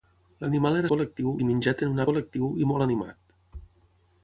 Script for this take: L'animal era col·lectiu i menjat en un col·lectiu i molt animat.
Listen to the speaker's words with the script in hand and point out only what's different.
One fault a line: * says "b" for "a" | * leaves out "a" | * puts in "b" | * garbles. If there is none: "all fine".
all fine